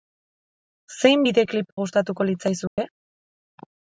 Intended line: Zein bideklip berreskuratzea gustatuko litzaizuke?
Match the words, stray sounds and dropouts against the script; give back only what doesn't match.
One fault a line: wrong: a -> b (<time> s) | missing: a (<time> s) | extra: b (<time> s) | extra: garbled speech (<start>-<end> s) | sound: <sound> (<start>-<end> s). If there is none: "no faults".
missing: berreskuratzea (1.7 s)
sound: dropout (2.7-2.8 s)